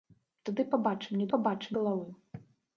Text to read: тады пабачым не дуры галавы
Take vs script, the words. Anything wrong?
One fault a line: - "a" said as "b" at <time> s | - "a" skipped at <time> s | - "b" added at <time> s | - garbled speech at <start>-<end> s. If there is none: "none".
- "дуры" said as "пабачым" at 1.3 s